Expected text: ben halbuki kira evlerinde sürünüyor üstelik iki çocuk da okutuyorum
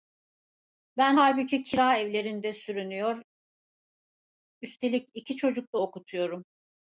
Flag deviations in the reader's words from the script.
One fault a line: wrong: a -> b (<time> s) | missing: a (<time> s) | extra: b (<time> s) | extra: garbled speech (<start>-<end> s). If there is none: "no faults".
no faults